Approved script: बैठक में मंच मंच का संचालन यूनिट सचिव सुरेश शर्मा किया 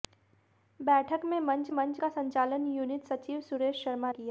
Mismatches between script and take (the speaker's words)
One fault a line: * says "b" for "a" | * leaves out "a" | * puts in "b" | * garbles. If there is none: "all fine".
all fine